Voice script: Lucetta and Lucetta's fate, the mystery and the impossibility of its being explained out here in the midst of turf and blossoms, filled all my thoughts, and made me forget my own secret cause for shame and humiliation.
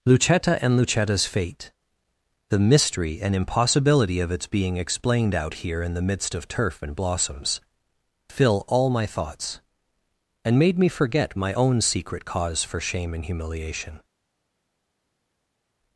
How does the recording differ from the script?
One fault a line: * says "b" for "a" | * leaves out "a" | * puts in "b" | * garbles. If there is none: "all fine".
* leaves out "the"
* says "fill" for "filled"